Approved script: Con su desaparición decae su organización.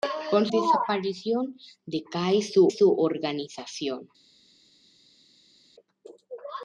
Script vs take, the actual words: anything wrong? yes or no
yes